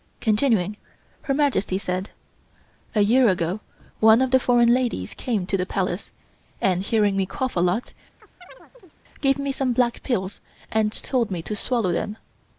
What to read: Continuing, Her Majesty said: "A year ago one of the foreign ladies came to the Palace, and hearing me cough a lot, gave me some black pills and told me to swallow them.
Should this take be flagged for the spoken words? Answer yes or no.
no